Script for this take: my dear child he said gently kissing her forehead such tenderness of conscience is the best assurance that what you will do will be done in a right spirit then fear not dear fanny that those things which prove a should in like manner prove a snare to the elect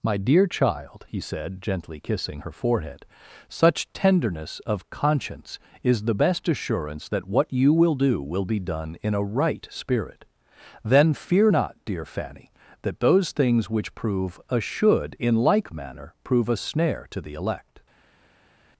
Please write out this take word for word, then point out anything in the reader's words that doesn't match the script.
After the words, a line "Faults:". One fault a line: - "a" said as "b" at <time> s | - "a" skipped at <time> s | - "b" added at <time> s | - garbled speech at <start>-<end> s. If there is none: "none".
my dear child he said gently kissing her forehead such tenderness of conscience is the best assurance that what you will do will be done in a right spirit then fear not dear fanny that those things which prove a should in like manner prove a snare to the elect
Faults:
none